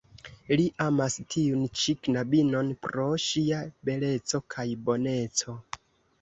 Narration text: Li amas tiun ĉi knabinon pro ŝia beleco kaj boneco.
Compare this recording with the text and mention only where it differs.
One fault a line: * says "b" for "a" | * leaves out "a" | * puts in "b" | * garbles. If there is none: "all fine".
all fine